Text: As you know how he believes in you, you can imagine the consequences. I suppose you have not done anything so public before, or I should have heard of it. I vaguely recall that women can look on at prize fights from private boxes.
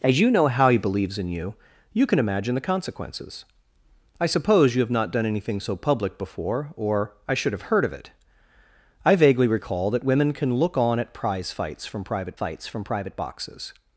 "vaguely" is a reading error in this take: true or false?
false